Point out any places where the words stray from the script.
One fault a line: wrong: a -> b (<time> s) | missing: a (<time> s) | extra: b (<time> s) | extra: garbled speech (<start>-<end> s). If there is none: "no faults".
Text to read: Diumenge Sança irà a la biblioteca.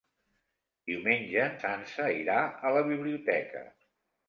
no faults